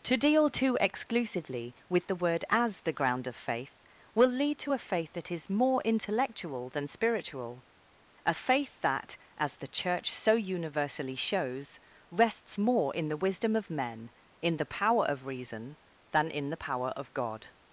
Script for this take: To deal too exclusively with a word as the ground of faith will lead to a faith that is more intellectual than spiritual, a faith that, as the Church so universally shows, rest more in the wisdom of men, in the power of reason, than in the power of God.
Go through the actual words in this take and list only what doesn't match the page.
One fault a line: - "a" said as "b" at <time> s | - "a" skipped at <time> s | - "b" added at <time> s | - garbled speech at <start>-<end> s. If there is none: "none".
- "a" said as "the" at 2.1 s
- "rest" said as "rests" at 12.1 s